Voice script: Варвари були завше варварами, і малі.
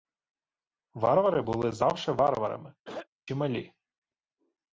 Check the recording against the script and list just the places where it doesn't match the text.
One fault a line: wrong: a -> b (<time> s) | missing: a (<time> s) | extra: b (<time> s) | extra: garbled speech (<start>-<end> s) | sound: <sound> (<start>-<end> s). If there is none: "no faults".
sound: throat clearing (2.8-3.1 s)